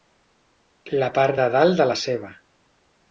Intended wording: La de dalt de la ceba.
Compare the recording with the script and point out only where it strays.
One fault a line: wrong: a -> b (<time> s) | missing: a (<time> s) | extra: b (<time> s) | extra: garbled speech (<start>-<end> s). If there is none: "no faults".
extra: part (1.2 s)